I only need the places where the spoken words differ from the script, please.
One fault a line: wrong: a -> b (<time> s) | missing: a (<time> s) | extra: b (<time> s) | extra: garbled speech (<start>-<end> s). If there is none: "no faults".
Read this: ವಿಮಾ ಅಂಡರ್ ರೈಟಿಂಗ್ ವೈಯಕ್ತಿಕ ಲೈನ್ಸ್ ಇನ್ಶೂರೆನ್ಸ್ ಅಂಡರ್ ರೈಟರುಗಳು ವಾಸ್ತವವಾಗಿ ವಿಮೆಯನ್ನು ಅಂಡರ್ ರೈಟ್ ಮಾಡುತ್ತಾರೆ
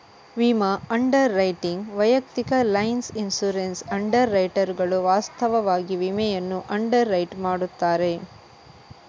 no faults